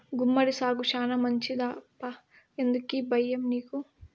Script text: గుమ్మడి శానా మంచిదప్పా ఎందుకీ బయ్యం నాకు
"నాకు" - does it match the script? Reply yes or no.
no